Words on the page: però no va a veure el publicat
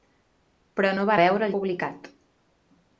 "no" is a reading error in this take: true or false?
false